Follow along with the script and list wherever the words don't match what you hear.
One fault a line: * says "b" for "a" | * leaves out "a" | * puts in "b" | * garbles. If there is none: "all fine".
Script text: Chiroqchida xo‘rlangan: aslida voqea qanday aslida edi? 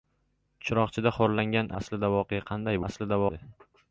all fine